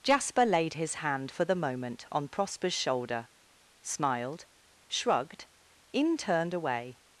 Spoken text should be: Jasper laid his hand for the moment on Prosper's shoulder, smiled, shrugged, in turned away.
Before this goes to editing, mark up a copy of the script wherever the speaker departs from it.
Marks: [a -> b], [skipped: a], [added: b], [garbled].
Jasper laid his hand for the moment on Prosper's shoulder, smiled, shrugged, in turned away.